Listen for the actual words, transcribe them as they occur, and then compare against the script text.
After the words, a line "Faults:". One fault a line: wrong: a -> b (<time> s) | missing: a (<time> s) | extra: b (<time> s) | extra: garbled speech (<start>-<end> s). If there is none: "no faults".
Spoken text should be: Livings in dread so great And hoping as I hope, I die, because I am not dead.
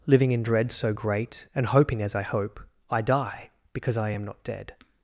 Living in dread so great And hoping as I hope, I die, because I am not dead.
Faults:
wrong: Livings -> Living (0.1 s)